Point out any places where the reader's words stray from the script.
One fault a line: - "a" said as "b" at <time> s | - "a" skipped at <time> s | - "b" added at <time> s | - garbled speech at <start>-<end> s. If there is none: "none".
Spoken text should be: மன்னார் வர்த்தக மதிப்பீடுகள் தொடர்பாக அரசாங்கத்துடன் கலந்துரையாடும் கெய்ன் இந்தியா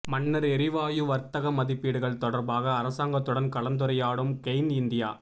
- "எரிவாயு" added at 0.5 s